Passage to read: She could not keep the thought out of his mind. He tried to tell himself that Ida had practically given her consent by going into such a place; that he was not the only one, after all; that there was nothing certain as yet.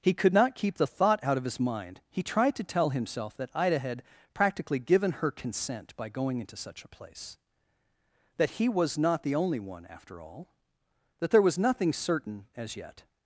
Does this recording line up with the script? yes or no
no